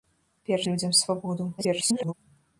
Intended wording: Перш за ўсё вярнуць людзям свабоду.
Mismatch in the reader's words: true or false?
true